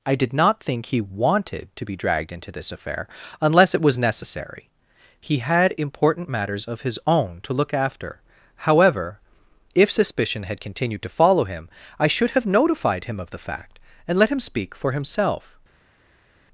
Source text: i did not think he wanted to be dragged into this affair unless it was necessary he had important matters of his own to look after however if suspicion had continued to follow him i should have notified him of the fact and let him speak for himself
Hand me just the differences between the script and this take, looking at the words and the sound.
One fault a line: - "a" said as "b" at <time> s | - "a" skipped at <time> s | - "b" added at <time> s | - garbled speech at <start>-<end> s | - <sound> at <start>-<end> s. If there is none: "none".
none